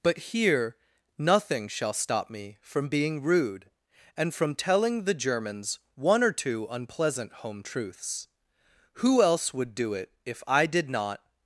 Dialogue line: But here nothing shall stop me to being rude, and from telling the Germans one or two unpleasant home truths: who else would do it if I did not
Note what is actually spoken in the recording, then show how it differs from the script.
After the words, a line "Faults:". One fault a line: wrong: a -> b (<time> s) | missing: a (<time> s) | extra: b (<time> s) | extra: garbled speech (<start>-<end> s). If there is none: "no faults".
But here nothing shall stop me from being rude, and from telling the Germans one or two unpleasant home truths: who else would do it if I did not
Faults:
wrong: to -> from (2.6 s)